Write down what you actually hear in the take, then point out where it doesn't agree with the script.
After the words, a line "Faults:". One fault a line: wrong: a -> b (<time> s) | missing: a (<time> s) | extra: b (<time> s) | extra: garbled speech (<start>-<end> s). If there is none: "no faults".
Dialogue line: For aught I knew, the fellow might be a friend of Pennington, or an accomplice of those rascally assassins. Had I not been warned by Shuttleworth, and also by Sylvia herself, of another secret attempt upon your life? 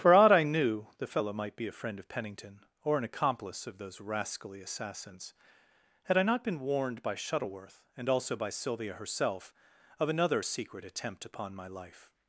For aught I knew, the fellow might be a friend of Pennington, or an accomplice of those rascally assassins. Had I not been warned by Shuttleworth, and also by Sylvia herself, of another secret attempt upon my life?
Faults:
wrong: your -> my (11.5 s)